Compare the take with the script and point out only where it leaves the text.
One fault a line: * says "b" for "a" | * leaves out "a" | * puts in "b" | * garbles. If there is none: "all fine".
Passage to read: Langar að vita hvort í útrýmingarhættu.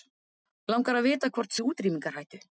all fine